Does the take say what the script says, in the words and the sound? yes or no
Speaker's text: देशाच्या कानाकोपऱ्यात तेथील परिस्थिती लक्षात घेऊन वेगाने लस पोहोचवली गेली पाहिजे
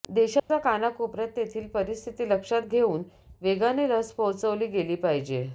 no